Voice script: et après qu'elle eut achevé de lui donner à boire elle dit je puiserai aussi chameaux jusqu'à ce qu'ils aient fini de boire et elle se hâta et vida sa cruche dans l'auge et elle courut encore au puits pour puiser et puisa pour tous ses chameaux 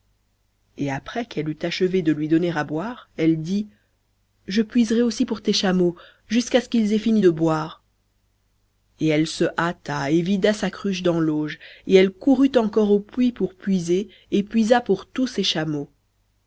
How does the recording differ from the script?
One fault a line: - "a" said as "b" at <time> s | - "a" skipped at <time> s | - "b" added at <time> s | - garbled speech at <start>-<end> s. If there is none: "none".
- "pour tes" added at 5.3 s